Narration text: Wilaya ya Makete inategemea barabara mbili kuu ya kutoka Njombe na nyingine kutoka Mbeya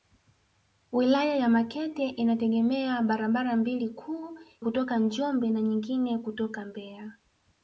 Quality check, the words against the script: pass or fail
fail